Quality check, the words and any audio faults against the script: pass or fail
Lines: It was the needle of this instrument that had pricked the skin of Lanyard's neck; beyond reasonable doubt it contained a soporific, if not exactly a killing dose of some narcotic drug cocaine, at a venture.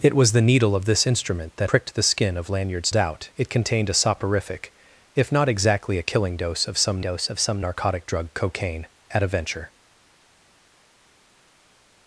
fail